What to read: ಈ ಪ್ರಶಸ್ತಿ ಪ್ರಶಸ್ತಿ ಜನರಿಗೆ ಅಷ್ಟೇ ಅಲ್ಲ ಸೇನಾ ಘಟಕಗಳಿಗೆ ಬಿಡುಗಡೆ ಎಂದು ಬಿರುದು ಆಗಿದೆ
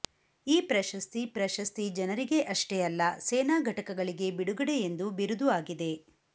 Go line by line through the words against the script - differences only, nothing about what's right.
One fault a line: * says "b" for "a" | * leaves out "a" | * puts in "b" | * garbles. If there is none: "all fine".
all fine